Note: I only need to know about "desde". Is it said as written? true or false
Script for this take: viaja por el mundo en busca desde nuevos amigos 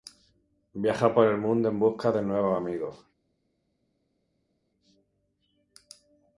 false